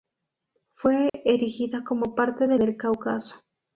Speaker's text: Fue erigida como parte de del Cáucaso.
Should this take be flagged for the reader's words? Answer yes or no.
no